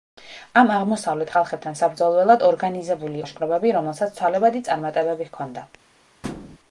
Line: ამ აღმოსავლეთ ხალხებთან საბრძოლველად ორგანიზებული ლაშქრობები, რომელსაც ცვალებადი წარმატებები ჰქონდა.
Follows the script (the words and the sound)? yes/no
no